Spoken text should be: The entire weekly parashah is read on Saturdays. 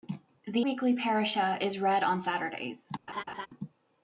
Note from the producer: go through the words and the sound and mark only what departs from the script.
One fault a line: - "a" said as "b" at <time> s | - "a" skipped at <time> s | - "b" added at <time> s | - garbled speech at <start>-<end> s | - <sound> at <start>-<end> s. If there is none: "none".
- "entire" skipped at 0.7 s
- laugh at 3.1-3.5 s